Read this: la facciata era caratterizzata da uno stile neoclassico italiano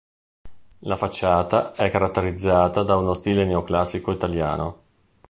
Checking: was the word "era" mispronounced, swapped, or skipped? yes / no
yes